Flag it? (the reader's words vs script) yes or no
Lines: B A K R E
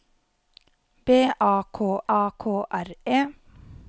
yes